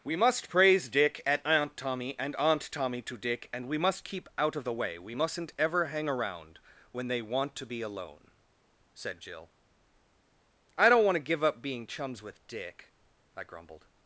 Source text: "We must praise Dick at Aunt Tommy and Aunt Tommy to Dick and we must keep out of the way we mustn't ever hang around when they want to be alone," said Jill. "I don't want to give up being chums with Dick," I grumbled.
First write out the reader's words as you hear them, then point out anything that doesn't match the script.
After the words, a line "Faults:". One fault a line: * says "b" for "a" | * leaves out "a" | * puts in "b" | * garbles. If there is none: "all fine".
"We must praise Dick at Aunt Tommy and Aunt Tommy to Dick and we must keep out of the way we mustn't ever hang around when they want to be alone," said Jill. "I don't want to give up being chums with Dick," I grumbled.
Faults:
all fine